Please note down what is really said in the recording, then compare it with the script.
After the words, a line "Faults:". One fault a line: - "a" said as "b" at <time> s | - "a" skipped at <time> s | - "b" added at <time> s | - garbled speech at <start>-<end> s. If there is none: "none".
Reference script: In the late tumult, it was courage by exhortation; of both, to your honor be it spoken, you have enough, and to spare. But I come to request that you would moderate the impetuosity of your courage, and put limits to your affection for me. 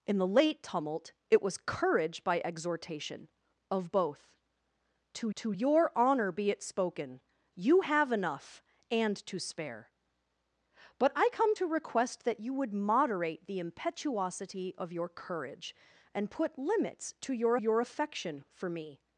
In the late tumult, it was courage by exhortation; of both, to to your honor be it spoken, you have enough, and to spare. But I come to request that you would moderate the impetuosity of your courage, and put limits to your your affection for me.
Faults:
- "to" added at 5.3 s
- "your" added at 17.5 s